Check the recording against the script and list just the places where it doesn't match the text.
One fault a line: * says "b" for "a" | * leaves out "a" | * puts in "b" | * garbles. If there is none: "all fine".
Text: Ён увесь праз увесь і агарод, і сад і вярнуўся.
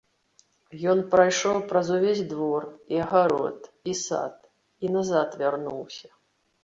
* says "прайшоў" for "увесь"
* puts in "двор"
* puts in "назад"